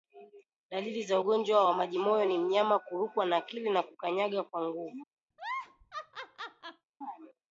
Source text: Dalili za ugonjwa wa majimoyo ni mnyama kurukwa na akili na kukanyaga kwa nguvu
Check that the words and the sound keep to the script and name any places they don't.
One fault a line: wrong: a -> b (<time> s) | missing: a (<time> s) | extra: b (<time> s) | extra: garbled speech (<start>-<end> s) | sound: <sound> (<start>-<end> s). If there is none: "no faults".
sound: laugh (5.3-6.9 s)